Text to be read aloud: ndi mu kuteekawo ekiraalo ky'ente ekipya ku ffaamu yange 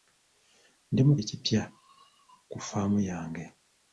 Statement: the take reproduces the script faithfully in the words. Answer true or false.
false